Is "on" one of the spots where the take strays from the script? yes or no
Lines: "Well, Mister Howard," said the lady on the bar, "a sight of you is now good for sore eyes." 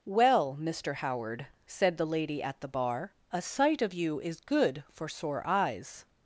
yes